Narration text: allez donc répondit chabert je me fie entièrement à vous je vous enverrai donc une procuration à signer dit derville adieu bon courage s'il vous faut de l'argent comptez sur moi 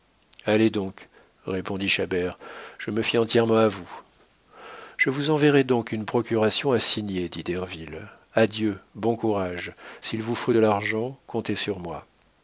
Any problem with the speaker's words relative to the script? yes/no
no